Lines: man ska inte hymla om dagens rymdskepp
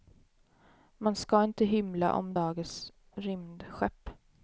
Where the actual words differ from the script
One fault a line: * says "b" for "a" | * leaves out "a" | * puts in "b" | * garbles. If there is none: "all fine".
all fine